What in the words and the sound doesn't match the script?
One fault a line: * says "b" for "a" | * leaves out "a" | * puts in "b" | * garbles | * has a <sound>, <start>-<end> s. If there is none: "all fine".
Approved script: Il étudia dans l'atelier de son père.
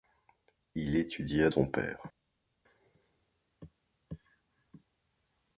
* leaves out "dans l'atelier de"